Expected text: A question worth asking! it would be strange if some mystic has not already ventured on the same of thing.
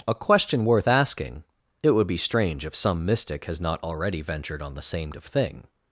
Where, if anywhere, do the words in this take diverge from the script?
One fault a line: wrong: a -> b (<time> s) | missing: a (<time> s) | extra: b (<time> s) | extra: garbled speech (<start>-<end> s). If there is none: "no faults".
no faults